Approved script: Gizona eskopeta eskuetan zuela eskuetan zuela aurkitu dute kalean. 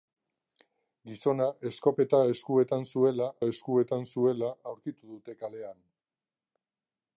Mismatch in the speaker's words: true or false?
false